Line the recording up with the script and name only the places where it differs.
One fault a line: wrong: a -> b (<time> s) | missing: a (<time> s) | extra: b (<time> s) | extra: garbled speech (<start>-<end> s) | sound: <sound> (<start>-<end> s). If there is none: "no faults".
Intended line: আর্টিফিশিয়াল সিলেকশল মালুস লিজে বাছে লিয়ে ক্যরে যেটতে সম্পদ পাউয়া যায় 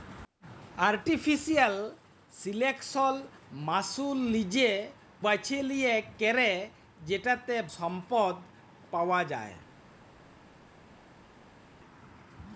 no faults